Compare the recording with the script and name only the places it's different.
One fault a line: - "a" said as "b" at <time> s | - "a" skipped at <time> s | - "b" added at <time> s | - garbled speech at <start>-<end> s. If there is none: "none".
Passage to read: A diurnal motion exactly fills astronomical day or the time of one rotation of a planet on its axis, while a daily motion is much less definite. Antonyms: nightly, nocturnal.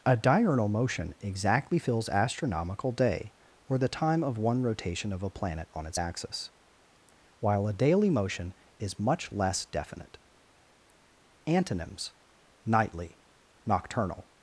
none